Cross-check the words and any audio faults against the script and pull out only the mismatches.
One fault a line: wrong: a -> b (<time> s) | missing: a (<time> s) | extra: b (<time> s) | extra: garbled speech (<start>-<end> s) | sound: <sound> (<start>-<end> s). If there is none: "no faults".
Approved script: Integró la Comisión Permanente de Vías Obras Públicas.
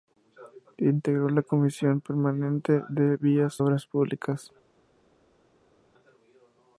no faults